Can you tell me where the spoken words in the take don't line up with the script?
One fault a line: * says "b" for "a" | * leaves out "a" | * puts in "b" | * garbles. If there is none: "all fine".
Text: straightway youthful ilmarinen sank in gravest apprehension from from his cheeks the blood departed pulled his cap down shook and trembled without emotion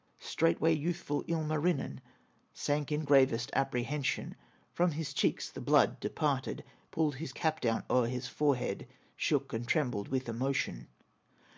* leaves out "from"
* puts in "o'er his forehead"
* says "with" for "without"